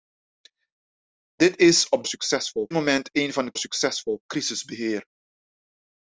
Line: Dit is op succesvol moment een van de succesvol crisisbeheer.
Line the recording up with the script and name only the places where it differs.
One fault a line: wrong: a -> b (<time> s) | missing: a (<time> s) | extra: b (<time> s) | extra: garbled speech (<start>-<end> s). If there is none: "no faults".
no faults